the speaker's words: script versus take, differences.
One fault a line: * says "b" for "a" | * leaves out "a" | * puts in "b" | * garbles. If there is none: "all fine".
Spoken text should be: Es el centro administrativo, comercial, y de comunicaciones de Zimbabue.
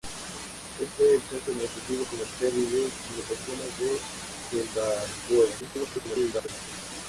* garbles